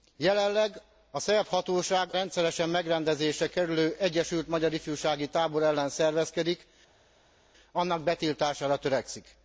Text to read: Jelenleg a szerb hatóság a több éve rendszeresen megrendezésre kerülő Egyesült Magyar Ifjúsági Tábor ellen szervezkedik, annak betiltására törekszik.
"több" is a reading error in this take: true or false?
true